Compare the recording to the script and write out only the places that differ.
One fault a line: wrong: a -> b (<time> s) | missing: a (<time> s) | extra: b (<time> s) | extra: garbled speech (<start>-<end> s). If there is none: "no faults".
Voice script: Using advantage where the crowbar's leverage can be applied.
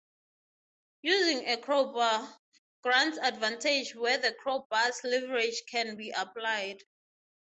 extra: a crowbar grants (1.5 s)